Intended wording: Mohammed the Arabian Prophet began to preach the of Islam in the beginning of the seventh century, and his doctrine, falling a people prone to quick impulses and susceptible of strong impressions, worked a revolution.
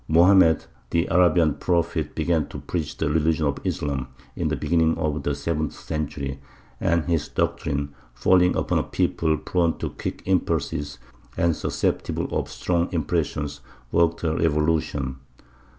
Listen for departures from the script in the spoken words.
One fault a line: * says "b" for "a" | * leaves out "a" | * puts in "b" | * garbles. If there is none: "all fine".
* puts in "religion"
* puts in "upon"